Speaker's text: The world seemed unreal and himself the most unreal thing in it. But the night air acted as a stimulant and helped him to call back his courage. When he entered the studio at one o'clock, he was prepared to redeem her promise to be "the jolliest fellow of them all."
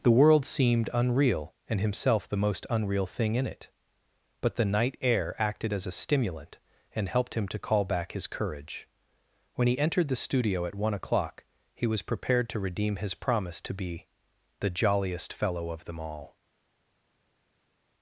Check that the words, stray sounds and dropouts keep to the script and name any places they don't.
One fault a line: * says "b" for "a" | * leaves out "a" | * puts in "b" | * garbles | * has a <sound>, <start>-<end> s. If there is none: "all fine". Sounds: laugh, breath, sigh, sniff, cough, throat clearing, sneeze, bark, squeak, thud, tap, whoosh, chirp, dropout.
* says "his" for "her"